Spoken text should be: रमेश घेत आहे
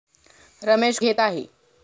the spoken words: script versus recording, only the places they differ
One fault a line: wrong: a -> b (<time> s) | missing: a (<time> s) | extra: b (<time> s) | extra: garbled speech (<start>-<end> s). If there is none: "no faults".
no faults